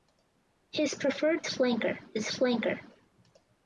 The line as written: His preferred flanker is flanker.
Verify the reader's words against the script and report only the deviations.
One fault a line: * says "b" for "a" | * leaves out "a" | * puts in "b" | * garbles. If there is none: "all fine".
all fine